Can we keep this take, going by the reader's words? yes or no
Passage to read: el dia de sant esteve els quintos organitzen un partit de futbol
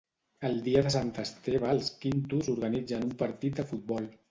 yes